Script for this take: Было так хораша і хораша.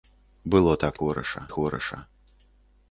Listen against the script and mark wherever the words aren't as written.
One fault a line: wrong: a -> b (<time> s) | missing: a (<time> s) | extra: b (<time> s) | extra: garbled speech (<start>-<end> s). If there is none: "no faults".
no faults